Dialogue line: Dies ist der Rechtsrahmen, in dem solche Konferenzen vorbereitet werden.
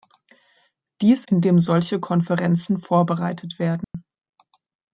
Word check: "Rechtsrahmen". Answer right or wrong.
wrong